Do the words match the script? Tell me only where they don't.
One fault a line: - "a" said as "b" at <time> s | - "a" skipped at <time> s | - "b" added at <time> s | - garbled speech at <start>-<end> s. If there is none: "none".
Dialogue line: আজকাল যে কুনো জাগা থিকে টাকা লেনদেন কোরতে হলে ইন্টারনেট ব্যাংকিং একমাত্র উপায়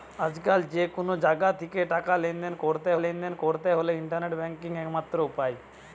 - "লেনদেন কোরতে" added at 3.0 s